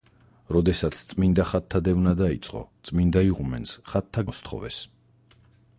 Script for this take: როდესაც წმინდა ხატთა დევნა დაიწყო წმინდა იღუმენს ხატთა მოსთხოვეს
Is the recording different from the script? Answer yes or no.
no